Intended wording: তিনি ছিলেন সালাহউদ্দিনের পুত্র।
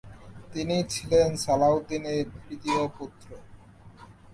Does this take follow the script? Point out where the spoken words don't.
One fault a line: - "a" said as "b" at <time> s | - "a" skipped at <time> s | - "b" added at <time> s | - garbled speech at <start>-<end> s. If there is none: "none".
- "তৃতীয়" added at 2.4 s